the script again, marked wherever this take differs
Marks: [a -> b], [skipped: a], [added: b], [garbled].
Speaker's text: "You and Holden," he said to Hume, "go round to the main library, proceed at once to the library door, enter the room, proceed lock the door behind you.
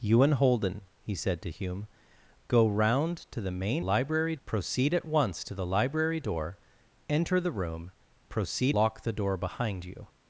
"You and Holden," he said to Hume, "go round to the main library, proceed at once to the library door, enter the room, proceed lock the door behind you.